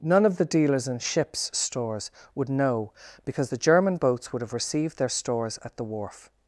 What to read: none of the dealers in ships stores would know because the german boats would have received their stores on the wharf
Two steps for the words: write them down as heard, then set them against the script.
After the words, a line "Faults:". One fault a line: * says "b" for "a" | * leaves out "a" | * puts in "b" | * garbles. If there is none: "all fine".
none of the dealers in ships stores would know because the german boats would have received their stores at the wharf
Faults:
* says "at" for "on"